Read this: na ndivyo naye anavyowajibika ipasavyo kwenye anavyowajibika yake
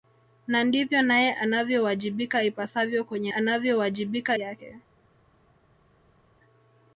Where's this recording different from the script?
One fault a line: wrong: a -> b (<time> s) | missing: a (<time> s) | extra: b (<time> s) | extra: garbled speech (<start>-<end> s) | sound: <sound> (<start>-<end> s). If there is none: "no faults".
no faults